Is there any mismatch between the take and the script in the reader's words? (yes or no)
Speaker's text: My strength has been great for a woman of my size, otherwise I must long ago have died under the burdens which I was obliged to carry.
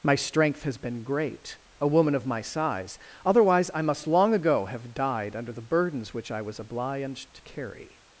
yes